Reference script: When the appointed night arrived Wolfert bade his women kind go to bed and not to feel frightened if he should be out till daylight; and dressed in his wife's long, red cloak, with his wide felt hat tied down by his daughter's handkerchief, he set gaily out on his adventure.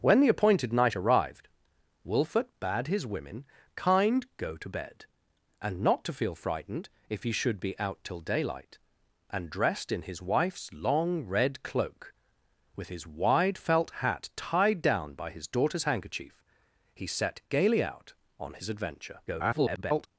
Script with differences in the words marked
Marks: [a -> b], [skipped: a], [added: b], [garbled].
When the appointed night arrived Wolfert bade his women kind go to bed and not to feel frightened if he should be out till daylight; and dressed in his wife's long, red cloak, with his wide felt hat tied down by his daughter's handkerchief, he set gaily out on his adventure. [garbled]